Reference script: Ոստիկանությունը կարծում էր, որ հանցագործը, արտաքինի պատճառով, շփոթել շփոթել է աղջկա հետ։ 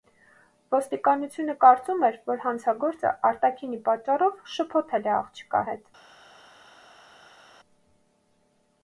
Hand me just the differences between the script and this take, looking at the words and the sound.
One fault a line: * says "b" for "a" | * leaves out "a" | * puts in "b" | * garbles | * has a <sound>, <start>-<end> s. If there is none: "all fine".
* leaves out "շփոթել"